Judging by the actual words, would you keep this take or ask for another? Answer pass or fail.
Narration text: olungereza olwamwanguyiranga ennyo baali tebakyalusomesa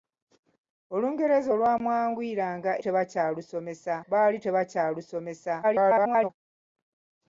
fail